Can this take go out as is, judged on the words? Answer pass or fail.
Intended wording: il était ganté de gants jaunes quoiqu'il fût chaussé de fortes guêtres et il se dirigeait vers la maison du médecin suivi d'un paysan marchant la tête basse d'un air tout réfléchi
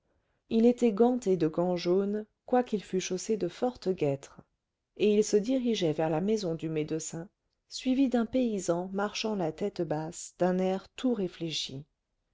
pass